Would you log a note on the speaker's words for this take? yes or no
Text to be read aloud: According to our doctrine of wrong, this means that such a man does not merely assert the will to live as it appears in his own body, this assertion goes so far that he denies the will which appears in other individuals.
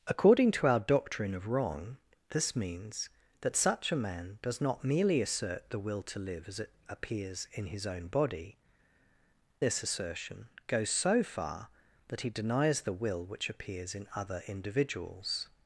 no